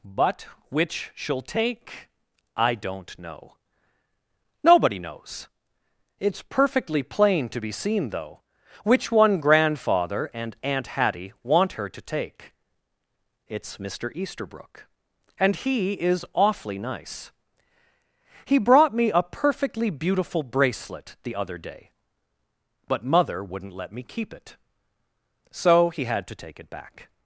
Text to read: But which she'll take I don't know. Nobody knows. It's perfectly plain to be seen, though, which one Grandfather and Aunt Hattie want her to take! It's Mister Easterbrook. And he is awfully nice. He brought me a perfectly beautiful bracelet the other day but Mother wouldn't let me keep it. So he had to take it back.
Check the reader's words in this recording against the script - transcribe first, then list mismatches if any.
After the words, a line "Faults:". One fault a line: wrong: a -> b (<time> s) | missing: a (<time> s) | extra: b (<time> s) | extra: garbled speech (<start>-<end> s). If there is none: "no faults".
But which she'll take I don't know. Nobody knows. It's perfectly plain to be seen, though, which one Grandfather and Aunt Hattie want her to take! It's Mister Easterbrook. And he is awfully nice. He brought me a perfectly beautiful bracelet the other day but Mother wouldn't let me keep it. So he had to take it back.
Faults:
no faults